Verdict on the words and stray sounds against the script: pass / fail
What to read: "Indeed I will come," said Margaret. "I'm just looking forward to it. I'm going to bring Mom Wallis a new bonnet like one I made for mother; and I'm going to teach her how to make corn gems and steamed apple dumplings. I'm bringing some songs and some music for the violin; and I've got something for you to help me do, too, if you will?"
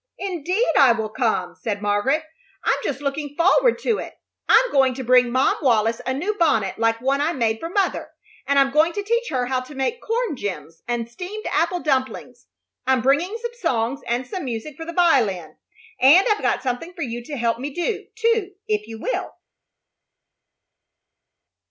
pass